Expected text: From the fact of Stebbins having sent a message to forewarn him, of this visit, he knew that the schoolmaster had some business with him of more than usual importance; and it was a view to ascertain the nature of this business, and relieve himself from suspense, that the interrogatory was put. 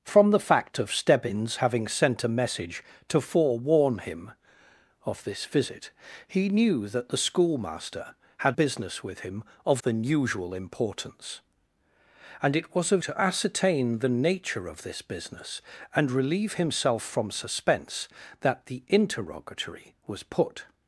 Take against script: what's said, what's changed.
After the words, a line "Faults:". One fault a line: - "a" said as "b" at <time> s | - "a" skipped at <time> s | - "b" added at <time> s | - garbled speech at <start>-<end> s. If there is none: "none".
From the fact of Stebbins having sent a message to forewarn him, of this visit, he knew that the schoolmaster had business with him of than usual importance; and it was a to ascertain the nature of this business, and relieve himself from suspense, that the interrogatory was put.
Faults:
- "some" skipped at 8.6 s
- "more" skipped at 9.8 s
- "view" skipped at 13.0 s